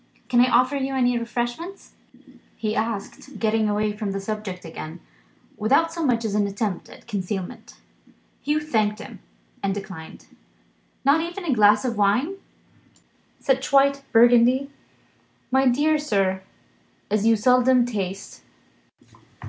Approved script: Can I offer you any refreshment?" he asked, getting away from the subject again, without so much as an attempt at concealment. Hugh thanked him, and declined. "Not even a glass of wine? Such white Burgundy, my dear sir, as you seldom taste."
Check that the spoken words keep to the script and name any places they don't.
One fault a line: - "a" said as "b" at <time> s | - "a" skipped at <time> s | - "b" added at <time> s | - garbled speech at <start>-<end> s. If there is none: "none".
none